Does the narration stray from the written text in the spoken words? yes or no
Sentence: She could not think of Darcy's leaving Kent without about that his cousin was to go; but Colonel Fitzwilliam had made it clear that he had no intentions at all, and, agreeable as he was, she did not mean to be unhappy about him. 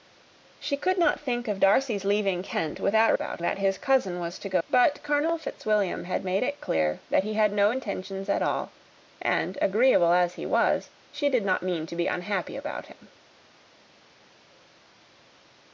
no